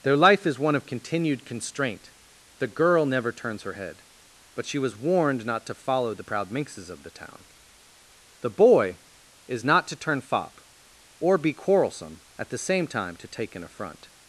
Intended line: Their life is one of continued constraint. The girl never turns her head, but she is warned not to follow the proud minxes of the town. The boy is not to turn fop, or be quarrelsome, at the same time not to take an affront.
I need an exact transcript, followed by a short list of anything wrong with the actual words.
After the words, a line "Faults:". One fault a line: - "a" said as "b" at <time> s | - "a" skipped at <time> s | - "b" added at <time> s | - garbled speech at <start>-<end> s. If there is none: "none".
Their life is one of continued constraint. The girl never turns her head, but she was warned not to follow the proud minxes of the town. The boy is not to turn fop, or be quarrelsome, at the same time to take an affront.
Faults:
- "is" said as "was" at 4.8 s
- "not" skipped at 13.2 s